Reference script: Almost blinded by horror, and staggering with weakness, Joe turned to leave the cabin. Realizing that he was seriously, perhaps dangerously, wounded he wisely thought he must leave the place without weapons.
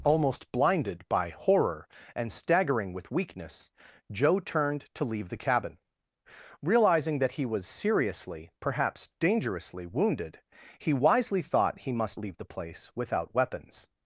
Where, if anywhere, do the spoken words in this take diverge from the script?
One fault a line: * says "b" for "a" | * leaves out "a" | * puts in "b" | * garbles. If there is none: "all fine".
all fine